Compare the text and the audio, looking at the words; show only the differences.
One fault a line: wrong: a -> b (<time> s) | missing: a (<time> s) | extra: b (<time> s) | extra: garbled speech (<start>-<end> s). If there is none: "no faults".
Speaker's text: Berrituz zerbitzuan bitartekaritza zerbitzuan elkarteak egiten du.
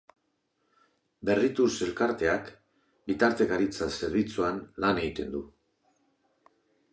wrong: zerbitzuan -> elkarteak (1.9 s)
wrong: elkarteak -> lan (4.9 s)